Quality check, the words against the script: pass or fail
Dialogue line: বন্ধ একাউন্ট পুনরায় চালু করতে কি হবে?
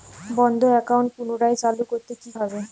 pass